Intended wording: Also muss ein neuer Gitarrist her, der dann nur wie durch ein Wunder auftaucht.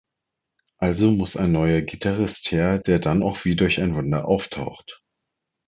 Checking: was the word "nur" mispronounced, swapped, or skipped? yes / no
yes